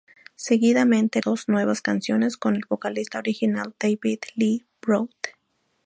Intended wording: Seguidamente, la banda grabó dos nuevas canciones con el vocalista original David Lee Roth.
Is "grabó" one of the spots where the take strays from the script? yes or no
yes